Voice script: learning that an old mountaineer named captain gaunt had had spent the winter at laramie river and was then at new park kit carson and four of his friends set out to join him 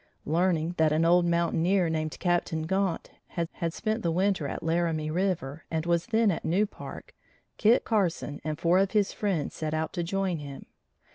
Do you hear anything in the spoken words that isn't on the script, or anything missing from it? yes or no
no